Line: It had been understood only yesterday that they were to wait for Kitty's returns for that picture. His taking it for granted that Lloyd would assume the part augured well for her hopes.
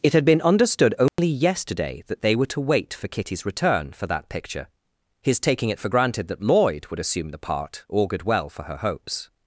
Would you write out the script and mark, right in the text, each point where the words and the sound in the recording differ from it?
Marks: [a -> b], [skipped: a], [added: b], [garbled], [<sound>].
It had been understood only [dropout] yesterday that they were to wait for Kitty's [returns -> return] for that picture. His taking it for granted that Lloyd would assume the part augured well for her hopes.